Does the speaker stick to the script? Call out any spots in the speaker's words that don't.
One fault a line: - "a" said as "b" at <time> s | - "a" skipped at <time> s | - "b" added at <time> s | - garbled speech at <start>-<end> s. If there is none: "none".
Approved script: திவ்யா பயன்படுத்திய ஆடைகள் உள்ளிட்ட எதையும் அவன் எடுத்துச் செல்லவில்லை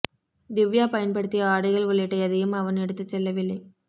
none